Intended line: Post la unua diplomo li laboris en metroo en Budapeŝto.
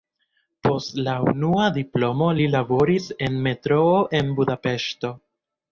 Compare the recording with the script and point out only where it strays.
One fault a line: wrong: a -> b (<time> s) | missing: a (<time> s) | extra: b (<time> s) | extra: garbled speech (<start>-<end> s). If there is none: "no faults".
no faults